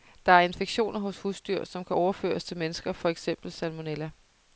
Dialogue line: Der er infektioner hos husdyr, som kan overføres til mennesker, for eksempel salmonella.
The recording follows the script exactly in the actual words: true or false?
true